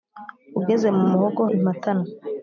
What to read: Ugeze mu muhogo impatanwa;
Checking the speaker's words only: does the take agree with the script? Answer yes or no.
yes